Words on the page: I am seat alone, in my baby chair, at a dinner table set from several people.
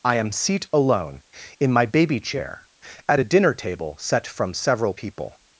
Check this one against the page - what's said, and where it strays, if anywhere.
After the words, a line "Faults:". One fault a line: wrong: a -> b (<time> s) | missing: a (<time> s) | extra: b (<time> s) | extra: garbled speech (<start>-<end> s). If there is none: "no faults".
I am seat alone, in my baby chair, at a dinner table set from several people.
Faults:
no faults